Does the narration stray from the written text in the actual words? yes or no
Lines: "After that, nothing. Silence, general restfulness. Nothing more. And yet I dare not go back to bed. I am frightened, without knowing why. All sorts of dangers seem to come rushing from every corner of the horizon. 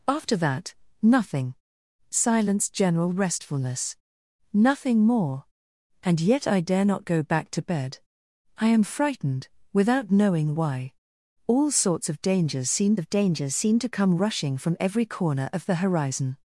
yes